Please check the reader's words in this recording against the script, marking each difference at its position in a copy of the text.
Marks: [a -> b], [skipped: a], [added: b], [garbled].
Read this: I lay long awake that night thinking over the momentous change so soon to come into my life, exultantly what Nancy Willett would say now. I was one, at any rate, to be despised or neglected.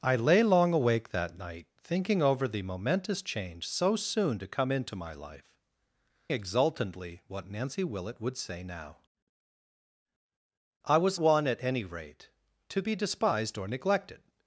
I lay long awake that night thinking over the momentous change so soon to come into my life, exultantly what Nancy Willett would say now. I was one, at any rate, to be despised or neglected.